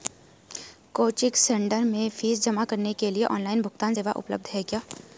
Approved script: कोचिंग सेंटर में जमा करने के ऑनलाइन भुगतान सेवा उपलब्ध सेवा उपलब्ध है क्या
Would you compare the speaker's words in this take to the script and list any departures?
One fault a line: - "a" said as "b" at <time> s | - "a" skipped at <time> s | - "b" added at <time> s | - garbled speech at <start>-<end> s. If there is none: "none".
- "फीस" added at 2.1 s
- "लिए" added at 3.1 s
- "सेवा उपलब्ध" skipped at 4.5 s